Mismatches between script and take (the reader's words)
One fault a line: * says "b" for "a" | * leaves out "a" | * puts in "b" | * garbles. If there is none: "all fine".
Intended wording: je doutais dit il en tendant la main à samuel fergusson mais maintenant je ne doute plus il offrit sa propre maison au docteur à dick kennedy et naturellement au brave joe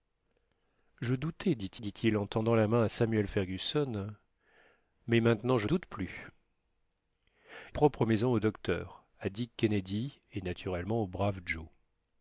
* puts in "dit"
* leaves out "ne"
* leaves out "il offrit sa"